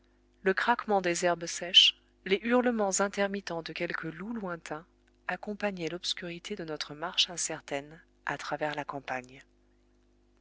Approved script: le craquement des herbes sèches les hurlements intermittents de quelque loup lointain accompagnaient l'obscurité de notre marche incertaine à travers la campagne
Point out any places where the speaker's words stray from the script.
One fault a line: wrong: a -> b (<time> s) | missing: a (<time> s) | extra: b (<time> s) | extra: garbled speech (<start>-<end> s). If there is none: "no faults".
no faults